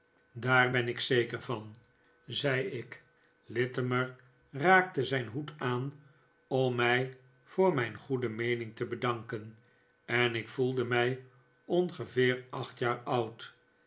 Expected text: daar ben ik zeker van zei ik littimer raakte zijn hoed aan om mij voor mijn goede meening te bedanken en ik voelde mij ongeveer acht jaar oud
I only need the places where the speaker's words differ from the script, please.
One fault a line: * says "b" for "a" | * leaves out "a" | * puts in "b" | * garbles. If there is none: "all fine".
all fine